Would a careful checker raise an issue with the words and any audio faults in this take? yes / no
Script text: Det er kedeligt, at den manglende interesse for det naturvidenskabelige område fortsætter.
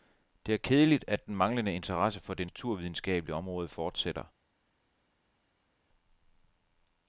no